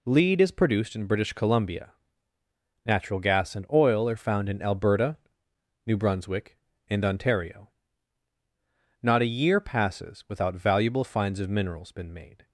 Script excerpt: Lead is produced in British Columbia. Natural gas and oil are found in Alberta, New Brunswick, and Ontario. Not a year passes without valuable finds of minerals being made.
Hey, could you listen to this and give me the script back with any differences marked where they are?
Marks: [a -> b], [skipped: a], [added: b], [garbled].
Lead is produced in British Columbia. Natural gas and oil are found in Alberta, New Brunswick, and Ontario. Not a year passes without valuable finds of minerals [being -> been] made.